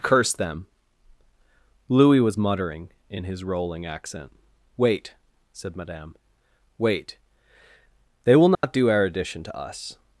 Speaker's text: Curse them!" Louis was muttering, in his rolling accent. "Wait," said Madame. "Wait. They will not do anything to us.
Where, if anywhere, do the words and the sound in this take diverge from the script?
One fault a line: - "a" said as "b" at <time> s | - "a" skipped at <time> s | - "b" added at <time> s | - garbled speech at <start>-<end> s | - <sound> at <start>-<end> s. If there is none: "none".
- dropout at 8.5-8.6 s
- "anything" said as "erudition" at 8.9 s